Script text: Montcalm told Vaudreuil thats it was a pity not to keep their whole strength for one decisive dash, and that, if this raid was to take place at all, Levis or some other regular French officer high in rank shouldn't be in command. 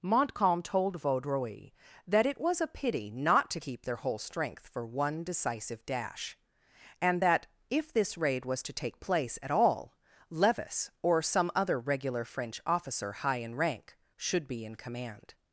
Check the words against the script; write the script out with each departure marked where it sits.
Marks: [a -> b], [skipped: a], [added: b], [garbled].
Montcalm told Vaudreuil [thats -> that] it was a pity not to keep their whole strength for one decisive dash, and that, if this raid was to take place at all, Levis or some other regular French officer high in rank [shouldn't -> should] be in command.